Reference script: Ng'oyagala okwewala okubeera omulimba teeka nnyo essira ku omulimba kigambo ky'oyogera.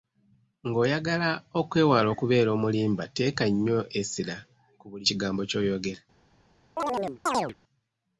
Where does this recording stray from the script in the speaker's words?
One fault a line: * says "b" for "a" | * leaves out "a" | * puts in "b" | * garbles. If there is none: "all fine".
* says "buli" for "omulimba"